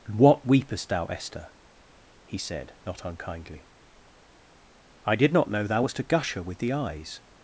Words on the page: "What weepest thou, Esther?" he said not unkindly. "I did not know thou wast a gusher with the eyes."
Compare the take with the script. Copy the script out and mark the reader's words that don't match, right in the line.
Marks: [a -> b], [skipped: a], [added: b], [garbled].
"What weepest thou, Esther?" he said not unkindly. "I did not know thou wast a gusher with the eyes."